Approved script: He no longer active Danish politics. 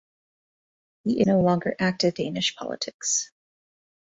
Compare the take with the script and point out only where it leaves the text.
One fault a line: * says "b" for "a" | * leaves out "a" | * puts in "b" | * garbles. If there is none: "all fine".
all fine